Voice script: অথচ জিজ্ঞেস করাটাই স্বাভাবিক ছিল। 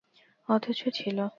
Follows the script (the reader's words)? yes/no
no